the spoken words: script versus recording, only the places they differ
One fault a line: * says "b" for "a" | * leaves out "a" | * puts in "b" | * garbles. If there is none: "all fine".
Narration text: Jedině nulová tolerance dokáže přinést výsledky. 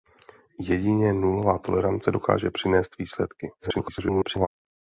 * garbles